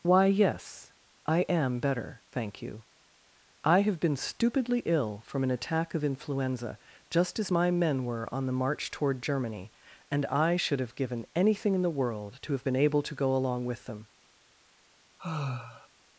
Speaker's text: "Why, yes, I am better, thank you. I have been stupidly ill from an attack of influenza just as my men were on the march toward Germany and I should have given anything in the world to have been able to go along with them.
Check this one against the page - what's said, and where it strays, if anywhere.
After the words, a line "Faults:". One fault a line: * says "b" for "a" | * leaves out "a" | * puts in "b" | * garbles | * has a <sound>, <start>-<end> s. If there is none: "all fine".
"Why, yes, I am better, thank you. I have been stupidly ill from an attack of influenza just as my men were on the march toward Germany and I should have given anything in the world to have been able to go along with them.
Faults:
* has a sigh, 15.2-15.9 s